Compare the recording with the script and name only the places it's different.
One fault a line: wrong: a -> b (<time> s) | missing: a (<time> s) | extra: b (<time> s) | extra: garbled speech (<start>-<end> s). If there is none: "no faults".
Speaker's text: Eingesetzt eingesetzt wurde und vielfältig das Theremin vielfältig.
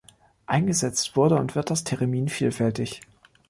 missing: eingesetzt (1.1 s)
wrong: vielfältig -> wird (1.5 s)